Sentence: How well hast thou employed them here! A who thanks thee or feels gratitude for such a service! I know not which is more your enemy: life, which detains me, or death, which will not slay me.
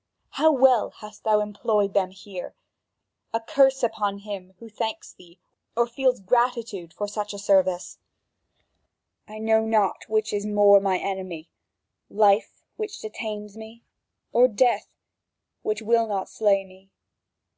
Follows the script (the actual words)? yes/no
no